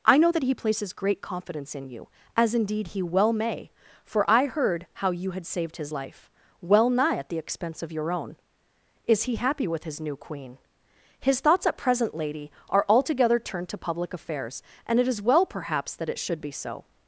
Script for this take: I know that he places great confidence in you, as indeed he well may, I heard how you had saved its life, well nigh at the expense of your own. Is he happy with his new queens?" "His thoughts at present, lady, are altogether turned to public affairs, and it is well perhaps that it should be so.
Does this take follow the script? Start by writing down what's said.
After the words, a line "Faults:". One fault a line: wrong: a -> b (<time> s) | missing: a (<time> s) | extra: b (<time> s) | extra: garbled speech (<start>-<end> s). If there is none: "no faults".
I know that he places great confidence in you, as indeed he well may, for I heard how you had saved his life, well nigh at the expense of your own. Is he happy with his new queen?" "His thoughts at present, lady, are altogether turned to public affairs, and it is well perhaps that it should be so.
Faults:
extra: for (4.0 s)
wrong: its -> his (5.8 s)
wrong: queens -> queen (10.1 s)